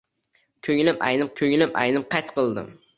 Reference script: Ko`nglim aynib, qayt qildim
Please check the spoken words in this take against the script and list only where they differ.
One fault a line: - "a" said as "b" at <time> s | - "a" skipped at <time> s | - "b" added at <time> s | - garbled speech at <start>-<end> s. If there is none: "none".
- "ko`nglim aynib" added at 1.4 s